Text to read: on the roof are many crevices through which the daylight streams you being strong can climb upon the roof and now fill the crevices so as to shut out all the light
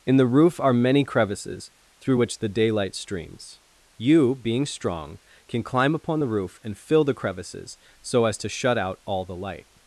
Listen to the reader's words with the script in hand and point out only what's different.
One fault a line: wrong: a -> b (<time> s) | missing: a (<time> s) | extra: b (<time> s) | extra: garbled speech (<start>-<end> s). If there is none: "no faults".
wrong: on -> in (0.1 s)
missing: now (6.8 s)